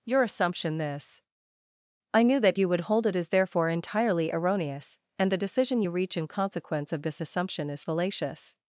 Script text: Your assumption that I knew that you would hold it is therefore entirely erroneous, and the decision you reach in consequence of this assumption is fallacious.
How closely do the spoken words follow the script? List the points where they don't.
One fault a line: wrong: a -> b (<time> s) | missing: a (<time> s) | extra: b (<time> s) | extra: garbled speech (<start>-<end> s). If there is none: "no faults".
wrong: that -> this (0.8 s)